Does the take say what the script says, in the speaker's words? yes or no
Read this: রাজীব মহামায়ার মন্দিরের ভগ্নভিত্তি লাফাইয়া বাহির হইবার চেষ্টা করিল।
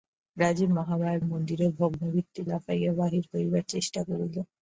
yes